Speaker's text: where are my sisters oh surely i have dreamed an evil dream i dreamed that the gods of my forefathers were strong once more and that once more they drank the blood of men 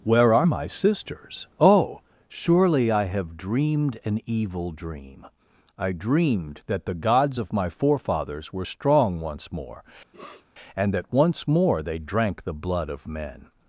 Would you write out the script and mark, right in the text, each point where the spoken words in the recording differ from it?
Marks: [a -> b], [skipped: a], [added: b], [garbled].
where are my sisters oh surely i have dreamed an evil dream i dreamed that the gods of my forefathers were strong once more and that once more they drank the blood of men